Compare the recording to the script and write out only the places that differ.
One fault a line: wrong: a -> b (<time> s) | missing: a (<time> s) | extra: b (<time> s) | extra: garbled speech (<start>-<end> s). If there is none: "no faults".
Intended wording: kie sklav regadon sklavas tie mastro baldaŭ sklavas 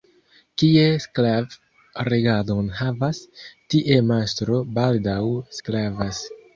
wrong: sklavas -> havas (2.8 s)